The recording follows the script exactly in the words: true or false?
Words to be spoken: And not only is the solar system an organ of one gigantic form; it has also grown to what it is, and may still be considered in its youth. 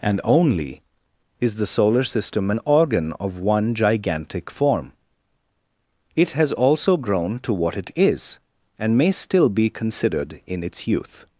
false